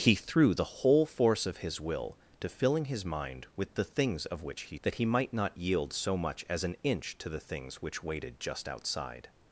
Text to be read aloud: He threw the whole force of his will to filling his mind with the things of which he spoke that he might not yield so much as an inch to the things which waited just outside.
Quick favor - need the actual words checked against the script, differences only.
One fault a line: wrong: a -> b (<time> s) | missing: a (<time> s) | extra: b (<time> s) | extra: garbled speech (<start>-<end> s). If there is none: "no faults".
missing: spoke (4.8 s)